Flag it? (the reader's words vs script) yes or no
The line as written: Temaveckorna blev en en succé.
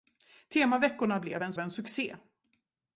no